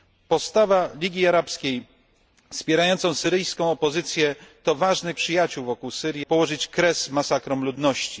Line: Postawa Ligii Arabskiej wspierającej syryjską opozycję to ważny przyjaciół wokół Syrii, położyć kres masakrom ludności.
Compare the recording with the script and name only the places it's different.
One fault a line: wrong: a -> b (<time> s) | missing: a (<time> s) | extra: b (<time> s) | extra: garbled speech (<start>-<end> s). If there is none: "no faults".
no faults